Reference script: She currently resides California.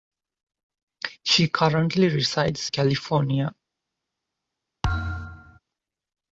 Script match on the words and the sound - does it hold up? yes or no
no